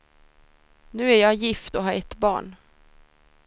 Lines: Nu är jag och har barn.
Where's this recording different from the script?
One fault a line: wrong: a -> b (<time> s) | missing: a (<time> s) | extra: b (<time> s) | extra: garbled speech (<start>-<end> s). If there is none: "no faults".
extra: gift (1.3 s)
extra: ett (1.9 s)